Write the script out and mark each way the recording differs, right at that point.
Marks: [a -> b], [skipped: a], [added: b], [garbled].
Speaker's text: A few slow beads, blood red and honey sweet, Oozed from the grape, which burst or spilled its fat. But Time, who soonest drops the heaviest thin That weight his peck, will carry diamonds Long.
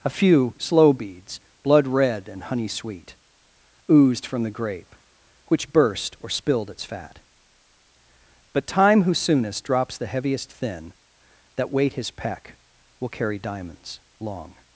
A few slow beads, blood red and honey sweet, Oozed from the grape, which burst or spilled its fat. But Time, who soonest drops the heaviest thin That weight his peck, will carry diamonds Long.